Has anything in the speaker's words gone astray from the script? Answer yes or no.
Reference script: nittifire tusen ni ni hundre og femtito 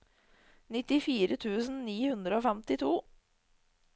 yes